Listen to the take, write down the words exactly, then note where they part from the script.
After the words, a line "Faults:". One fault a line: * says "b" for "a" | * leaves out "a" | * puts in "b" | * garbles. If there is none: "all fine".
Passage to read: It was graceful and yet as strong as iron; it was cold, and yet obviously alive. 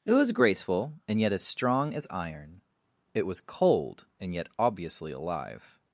It was graceful and yet as strong as iron; it was cold, and yet obviously alive.
Faults:
all fine